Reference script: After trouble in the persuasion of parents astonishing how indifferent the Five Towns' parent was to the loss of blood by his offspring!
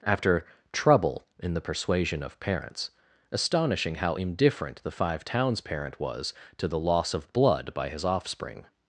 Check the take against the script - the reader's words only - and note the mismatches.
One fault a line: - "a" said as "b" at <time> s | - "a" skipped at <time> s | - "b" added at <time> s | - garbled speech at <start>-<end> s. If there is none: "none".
none